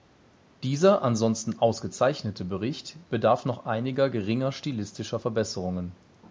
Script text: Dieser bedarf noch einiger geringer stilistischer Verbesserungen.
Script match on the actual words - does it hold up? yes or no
no